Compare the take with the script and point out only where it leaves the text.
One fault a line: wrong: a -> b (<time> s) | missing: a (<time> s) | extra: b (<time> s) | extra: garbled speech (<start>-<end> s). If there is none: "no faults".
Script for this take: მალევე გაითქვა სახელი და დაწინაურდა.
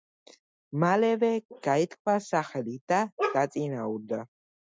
no faults